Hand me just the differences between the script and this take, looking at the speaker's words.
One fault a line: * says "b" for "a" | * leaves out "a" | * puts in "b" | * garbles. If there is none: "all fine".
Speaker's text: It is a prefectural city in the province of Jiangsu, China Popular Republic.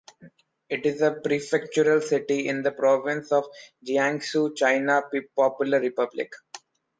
all fine